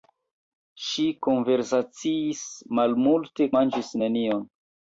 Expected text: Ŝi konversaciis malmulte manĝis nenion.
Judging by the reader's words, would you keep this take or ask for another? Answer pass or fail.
pass